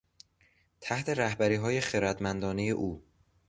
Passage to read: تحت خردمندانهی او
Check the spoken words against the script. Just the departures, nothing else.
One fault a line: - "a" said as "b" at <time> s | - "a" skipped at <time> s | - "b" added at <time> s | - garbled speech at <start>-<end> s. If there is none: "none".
- "رهبریهای" added at 1.1 s